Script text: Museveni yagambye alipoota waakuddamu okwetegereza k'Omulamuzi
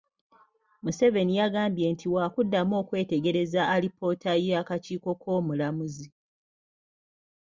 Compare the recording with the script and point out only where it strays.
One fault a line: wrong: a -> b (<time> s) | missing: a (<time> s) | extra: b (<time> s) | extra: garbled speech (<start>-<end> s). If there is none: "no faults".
wrong: alipoota -> nti (1.9 s)
extra: alipoota y'akakiiko (3.7 s)